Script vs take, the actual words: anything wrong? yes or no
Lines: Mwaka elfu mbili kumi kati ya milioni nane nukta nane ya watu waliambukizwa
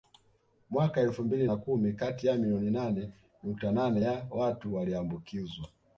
yes